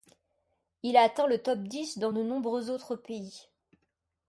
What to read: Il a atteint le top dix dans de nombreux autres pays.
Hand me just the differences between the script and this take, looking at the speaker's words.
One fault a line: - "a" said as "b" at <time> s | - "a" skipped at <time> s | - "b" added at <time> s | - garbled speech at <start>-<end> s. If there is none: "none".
none